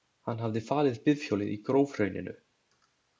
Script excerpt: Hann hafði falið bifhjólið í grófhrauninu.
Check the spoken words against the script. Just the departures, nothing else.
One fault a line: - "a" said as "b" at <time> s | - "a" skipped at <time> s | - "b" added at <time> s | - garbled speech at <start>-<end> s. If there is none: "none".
none